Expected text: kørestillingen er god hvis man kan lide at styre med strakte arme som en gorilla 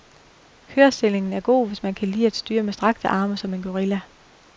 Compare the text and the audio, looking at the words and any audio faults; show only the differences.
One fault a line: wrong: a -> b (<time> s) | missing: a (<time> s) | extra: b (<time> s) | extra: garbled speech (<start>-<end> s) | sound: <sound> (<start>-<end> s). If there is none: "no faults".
no faults